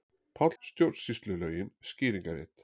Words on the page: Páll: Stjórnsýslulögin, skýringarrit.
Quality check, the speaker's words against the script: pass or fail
pass